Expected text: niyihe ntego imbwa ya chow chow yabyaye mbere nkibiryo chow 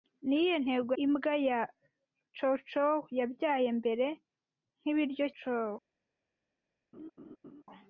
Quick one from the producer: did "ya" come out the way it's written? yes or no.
yes